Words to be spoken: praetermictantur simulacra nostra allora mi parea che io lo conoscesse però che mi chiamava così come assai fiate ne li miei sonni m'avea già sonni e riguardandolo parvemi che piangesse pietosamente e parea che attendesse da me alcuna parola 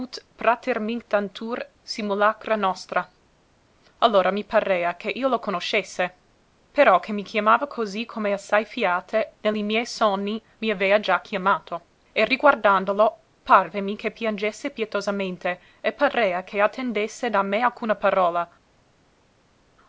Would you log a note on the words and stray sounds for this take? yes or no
yes